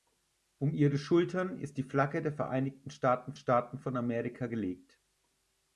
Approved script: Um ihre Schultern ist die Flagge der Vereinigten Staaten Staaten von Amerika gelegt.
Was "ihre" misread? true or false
false